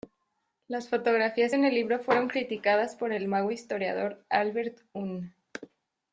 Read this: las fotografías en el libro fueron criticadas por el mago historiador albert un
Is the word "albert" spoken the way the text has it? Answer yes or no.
yes